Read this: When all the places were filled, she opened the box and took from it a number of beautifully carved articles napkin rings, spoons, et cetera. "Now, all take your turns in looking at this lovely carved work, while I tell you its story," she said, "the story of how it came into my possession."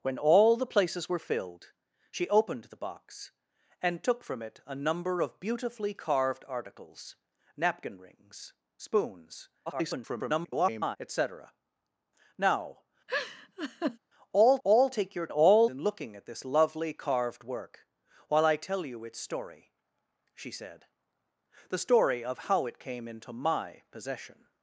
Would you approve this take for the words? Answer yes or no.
no